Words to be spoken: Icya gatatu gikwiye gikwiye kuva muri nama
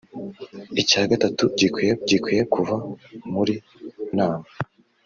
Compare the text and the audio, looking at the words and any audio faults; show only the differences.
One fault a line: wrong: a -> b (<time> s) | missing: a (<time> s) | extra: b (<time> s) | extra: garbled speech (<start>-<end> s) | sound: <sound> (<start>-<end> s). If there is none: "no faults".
no faults